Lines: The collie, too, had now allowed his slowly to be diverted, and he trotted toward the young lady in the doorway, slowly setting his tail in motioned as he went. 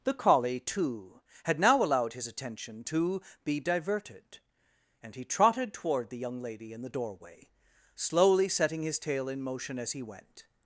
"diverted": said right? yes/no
yes